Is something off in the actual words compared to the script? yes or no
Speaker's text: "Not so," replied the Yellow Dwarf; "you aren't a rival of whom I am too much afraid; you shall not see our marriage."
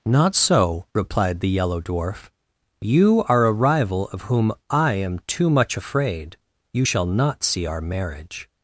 yes